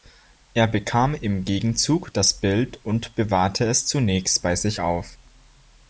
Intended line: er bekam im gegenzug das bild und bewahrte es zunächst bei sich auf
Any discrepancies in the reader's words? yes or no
no